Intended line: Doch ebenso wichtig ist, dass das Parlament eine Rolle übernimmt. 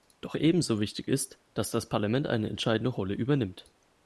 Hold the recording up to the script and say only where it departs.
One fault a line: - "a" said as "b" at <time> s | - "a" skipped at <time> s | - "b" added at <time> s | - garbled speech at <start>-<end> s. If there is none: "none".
- "entscheidende" added at 2.5 s